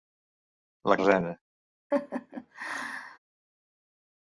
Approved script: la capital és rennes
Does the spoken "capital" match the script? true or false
false